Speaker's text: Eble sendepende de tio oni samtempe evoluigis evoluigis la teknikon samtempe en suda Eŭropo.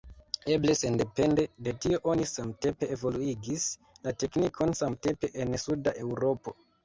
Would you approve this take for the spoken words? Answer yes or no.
no